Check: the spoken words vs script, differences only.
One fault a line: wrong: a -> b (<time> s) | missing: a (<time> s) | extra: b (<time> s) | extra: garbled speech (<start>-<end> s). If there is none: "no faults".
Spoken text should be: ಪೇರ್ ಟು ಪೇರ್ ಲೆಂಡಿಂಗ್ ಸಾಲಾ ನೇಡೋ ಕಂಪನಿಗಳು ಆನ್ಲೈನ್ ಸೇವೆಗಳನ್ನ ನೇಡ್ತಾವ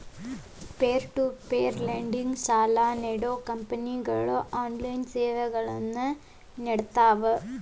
no faults